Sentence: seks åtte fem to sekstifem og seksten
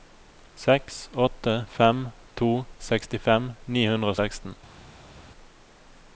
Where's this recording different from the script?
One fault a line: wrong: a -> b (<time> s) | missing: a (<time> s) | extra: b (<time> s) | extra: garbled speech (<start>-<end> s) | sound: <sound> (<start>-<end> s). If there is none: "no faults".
extra: ni hundre (3.8 s)